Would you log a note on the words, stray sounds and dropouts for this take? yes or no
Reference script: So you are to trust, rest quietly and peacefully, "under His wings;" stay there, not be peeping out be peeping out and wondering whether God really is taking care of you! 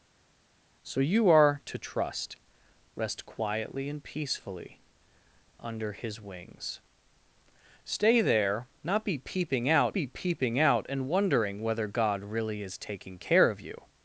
no